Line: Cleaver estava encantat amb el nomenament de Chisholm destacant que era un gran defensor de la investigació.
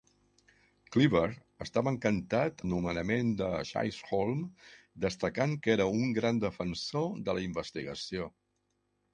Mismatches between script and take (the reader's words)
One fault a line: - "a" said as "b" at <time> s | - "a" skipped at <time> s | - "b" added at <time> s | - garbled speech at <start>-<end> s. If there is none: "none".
- "amb" skipped at 2.6 s